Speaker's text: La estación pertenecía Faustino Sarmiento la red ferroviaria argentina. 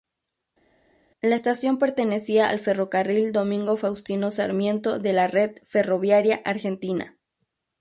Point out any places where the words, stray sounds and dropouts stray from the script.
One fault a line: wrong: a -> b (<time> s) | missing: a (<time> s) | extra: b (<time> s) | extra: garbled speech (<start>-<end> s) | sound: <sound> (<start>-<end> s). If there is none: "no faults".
extra: al Ferrocarril Domingo (2.5 s)
extra: de (5.0 s)